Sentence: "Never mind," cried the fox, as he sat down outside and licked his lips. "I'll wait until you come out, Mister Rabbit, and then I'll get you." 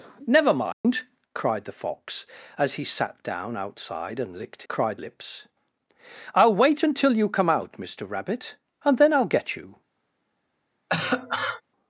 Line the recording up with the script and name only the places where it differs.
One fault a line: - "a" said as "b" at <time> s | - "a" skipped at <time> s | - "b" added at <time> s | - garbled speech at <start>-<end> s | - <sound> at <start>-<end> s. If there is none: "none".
- dropout at 0.7-0.8 s
- "his" said as "cried" at 4.7 s
- cough at 10.9-11.6 s